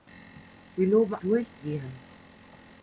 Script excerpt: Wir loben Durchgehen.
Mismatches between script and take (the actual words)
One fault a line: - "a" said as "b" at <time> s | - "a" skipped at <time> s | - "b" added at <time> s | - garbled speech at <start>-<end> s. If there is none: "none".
none